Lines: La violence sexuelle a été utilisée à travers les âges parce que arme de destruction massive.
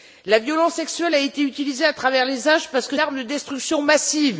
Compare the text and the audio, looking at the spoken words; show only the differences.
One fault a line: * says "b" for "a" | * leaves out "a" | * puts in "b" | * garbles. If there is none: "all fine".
all fine